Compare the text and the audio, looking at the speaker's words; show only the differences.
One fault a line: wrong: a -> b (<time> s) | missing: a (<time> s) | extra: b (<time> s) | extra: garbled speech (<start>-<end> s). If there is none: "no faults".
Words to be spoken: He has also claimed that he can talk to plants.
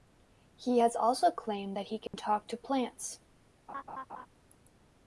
no faults